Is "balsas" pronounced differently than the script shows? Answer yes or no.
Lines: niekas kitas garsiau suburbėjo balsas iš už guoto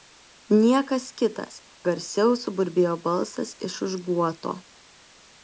no